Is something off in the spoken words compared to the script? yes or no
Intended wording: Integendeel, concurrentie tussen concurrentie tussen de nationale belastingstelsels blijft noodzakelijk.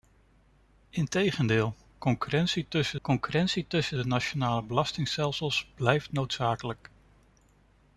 no